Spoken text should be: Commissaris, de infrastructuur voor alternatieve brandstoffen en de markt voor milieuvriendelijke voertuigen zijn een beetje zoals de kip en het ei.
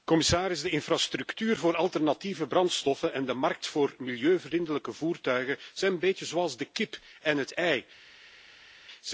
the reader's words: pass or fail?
pass